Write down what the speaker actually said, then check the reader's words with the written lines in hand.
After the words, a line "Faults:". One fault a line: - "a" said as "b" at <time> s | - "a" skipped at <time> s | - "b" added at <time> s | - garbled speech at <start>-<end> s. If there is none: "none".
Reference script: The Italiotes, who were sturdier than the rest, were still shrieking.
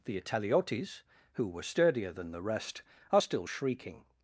The Italiotes, who were sturdier than the rest, are still shrieking.
Faults:
- "were" said as "are" at 3.1 s